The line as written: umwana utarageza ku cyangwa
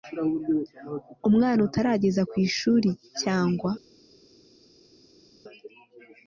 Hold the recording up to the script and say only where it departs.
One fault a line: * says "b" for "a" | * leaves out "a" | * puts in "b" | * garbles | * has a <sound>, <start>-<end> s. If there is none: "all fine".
* puts in "ishuri"